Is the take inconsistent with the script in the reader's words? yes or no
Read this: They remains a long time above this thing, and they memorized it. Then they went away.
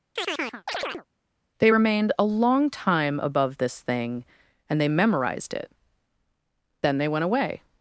yes